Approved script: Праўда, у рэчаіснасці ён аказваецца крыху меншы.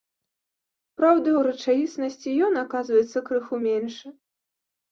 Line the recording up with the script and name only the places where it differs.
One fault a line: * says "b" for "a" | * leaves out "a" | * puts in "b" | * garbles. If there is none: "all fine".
all fine